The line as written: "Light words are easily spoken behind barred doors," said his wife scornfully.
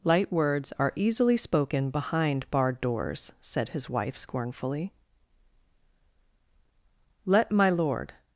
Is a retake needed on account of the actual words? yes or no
yes